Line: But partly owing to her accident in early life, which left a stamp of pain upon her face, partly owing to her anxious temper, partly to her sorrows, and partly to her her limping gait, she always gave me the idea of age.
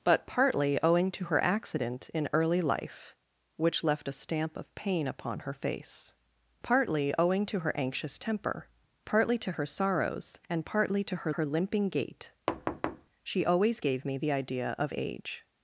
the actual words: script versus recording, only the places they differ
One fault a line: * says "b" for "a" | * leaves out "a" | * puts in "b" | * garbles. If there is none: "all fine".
all fine